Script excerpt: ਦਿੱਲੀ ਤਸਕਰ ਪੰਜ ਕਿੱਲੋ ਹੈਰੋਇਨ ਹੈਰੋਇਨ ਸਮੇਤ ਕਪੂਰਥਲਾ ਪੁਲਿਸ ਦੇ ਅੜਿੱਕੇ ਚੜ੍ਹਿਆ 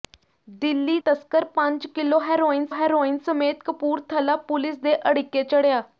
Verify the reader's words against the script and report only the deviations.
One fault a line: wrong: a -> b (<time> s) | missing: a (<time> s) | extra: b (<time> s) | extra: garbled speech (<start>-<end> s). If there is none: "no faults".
no faults